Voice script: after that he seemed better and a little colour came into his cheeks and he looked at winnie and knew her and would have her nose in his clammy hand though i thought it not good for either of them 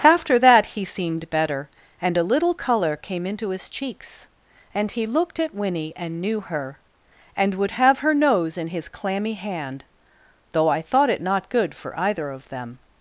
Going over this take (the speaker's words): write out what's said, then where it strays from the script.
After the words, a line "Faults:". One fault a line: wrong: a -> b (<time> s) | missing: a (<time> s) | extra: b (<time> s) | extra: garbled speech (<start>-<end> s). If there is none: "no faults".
after that he seemed better and a little colour came into his cheeks and he looked at winnie and knew her and would have her nose in his clammy hand though i thought it not good for either of them
Faults:
no faults